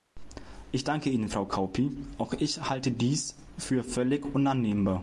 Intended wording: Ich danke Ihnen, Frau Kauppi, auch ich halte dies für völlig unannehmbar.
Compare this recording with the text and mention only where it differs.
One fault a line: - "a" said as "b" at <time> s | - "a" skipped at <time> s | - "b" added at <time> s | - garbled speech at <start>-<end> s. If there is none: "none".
none